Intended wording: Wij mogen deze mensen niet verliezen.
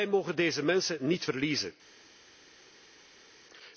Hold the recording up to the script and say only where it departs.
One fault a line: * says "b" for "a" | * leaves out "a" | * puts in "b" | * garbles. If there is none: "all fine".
all fine